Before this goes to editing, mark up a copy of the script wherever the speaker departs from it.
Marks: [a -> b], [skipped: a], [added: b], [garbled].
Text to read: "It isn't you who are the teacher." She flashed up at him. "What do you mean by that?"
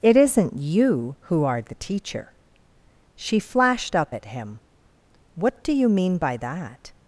"It isn't you who are the teacher." She flashed up at him. "What do you mean by that?"